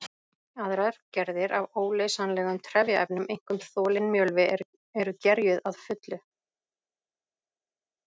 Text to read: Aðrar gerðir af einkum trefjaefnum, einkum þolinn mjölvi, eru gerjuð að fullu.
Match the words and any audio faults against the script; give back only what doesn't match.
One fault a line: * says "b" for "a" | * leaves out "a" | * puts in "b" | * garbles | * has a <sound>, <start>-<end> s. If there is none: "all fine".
* says "óleysanlegum" for "einkum"